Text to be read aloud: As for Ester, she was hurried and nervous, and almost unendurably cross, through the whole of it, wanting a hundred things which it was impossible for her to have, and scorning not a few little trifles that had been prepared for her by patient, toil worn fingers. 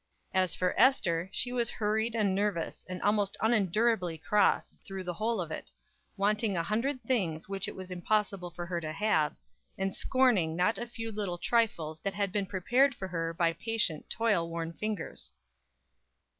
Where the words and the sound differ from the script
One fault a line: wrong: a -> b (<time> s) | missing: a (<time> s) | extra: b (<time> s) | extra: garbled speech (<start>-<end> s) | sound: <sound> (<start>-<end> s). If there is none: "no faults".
no faults